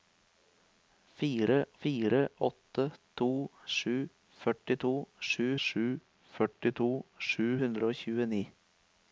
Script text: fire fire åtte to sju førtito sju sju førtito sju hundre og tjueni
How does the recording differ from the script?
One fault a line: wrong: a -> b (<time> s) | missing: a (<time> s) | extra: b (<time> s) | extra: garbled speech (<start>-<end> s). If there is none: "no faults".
no faults